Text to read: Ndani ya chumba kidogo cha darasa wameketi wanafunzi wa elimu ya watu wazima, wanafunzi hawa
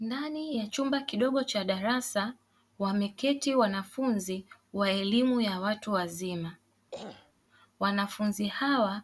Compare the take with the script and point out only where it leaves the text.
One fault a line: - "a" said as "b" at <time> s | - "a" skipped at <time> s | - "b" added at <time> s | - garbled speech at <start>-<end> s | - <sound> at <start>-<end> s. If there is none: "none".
- throat clearing at 6.9-7.3 s